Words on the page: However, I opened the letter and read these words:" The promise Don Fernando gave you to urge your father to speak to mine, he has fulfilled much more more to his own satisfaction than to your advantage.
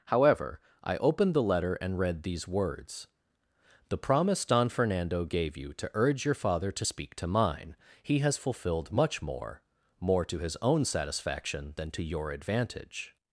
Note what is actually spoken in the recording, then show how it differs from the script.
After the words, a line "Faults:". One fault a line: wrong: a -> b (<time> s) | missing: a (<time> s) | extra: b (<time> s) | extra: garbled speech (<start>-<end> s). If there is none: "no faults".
However, I opened the letter and read these words:" The promise Don Fernando gave you to urge your father to speak to mine, he has fulfilled much more more to his own satisfaction than to your advantage.
Faults:
no faults